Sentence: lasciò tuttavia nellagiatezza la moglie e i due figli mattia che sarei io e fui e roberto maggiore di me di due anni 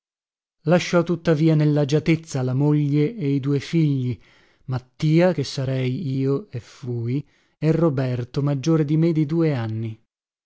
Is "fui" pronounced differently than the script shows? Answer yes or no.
no